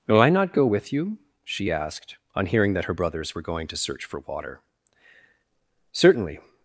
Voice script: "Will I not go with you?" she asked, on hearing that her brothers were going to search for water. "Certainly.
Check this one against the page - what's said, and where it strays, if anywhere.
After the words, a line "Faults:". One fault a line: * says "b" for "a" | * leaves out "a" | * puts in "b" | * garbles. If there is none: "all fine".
"Will I not go with you?" she asked, on hearing that her brothers were going to search for water. "Certainly.
Faults:
all fine